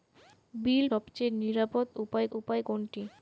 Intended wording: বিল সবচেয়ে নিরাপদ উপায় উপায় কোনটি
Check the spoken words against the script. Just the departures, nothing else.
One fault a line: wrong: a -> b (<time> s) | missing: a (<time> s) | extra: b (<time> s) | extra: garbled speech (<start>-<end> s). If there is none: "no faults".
no faults